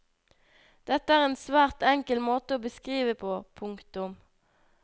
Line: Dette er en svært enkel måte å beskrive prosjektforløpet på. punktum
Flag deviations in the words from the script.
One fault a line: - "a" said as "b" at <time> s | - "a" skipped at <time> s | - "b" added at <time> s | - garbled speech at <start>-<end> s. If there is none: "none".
- "prosjektforløpet" skipped at 3.1 s